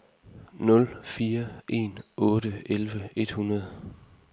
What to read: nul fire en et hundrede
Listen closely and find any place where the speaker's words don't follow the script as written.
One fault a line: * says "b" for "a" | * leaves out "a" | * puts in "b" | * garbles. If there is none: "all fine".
* puts in "otte elleve"